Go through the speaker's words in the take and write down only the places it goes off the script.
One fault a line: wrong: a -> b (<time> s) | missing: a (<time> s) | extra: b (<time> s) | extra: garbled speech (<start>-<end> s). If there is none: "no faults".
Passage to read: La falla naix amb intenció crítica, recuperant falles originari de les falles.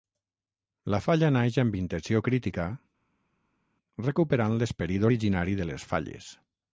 wrong: falles -> l'esperit (4.6 s)